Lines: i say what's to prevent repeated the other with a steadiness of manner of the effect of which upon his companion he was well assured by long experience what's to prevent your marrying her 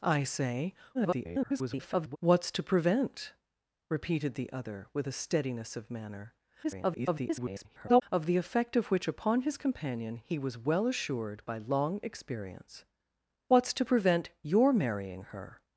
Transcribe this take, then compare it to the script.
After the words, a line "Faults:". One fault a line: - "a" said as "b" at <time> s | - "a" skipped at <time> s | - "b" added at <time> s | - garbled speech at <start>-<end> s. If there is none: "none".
i say [garbled] what's to prevent repeated the other with a steadiness of manner [garbled] of the effect of which upon his companion he was well assured by long experience what's to prevent your marrying her
Faults:
- garbled speech at 0.9-2.2 s
- garbled speech at 6.6-8.0 s